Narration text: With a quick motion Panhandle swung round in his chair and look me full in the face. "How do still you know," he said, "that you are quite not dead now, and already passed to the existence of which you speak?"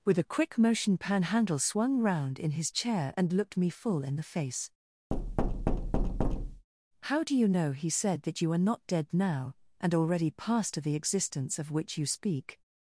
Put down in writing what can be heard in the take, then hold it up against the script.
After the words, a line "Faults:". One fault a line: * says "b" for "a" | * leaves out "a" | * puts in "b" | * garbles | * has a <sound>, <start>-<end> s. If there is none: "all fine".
With a quick motion Panhandle swung round in his chair and looked me full in the face. "How do you know," he said, "that you are not dead now, and already passed to the existence of which you speak?"
Faults:
* says "looked" for "look"
* has a thud, 5.1-6.7 s
* leaves out "still"
* leaves out "quite"